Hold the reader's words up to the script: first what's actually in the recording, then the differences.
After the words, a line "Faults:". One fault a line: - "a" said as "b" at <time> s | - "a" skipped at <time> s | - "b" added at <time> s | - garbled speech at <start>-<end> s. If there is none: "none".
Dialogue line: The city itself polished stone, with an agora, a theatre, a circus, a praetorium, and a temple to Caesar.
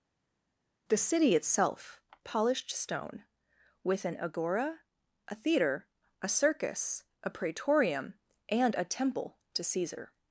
The city itself polished stone, with an agora, a theatre, a circus, a praetorium, and a temple to Caesar.
Faults:
none